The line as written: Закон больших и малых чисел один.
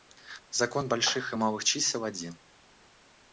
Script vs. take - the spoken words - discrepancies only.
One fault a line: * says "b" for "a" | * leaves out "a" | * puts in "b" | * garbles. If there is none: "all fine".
all fine